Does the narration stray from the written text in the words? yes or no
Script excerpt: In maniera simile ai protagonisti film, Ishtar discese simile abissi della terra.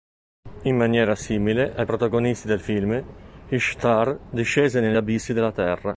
yes